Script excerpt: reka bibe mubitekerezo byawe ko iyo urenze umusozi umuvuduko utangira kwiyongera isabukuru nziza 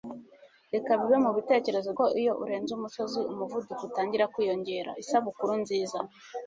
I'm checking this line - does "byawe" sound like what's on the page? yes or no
no